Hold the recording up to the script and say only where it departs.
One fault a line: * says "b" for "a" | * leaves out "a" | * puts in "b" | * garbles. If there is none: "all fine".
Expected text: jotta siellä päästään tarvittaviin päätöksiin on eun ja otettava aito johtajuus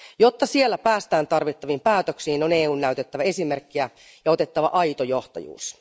* puts in "näytettävä esimerkkiä"